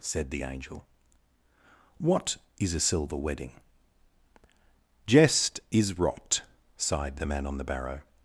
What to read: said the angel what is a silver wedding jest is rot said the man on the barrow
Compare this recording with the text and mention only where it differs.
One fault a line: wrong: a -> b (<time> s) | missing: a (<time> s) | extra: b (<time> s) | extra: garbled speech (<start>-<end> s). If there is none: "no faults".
wrong: said -> sighed (6.8 s)